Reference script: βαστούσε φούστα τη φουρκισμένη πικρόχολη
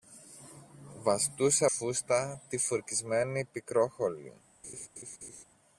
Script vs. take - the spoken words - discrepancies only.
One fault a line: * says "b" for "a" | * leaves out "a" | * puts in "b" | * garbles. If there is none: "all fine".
all fine